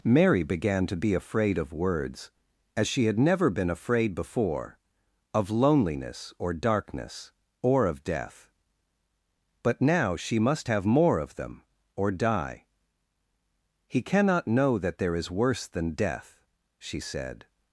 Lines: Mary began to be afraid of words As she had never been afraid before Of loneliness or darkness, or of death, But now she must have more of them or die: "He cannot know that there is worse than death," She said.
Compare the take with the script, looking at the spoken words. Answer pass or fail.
pass